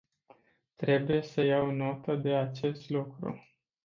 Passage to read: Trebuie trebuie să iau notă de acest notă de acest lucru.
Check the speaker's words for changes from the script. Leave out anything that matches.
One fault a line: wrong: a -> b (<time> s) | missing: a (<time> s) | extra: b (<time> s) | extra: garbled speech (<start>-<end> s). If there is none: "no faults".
missing: trebuie (1.2 s)
missing: notă de acest (2.9 s)